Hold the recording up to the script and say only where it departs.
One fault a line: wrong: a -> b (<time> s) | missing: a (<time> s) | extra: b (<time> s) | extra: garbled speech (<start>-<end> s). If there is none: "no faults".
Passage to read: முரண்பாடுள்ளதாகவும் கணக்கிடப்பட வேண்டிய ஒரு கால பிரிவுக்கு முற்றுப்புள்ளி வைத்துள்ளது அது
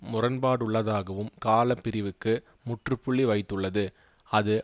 missing: கணக்கிடப்பட வேண்டிய ஒரு (1.3 s)